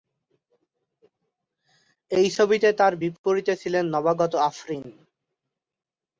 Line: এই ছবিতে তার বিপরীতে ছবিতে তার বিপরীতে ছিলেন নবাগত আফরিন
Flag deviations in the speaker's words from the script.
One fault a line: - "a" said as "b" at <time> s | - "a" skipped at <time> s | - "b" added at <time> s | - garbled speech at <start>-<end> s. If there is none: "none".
- "ছবিতে তার বিপরীতে" skipped at 3.5 s